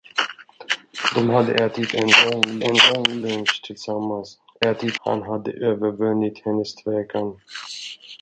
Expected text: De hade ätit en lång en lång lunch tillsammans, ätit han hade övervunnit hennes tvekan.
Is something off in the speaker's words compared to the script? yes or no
no